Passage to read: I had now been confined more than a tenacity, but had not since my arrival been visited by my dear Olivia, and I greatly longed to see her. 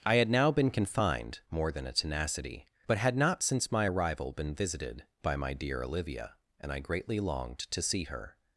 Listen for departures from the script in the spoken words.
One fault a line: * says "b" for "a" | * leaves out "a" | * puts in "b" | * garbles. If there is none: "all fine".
all fine